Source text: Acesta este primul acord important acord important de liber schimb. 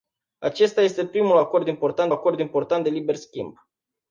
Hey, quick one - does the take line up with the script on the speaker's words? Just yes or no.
yes